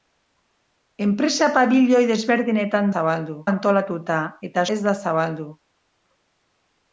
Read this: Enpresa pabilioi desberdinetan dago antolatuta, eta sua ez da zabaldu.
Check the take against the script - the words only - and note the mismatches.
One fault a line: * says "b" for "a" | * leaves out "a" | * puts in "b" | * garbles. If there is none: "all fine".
* says "zabaldu" for "dago"
* leaves out "sua"